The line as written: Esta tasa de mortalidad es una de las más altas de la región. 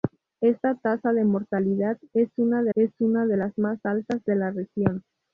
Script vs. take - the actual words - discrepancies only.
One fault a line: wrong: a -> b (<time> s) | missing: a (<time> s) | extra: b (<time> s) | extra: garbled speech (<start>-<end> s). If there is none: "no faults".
extra: es una de (2.7 s)